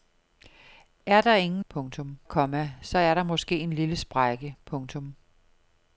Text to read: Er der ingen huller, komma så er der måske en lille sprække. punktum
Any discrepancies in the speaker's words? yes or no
yes